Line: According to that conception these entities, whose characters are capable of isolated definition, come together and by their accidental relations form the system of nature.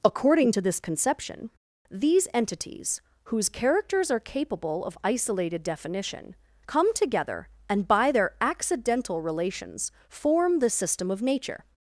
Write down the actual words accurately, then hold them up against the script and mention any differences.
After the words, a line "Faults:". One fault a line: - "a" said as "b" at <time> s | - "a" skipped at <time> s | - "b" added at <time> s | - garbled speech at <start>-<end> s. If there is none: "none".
According to this conception these entities, whose characters are capable of isolated definition, come together and by their accidental relations form the system of nature.
Faults:
- "that" said as "this" at 0.6 s